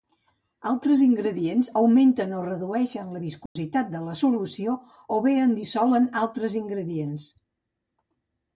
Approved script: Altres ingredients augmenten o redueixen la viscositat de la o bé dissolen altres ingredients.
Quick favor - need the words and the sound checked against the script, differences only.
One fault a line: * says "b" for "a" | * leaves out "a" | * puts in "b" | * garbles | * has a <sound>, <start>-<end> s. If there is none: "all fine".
* has a dropout, 3.5-3.6 s
* puts in "solució"
* puts in "en"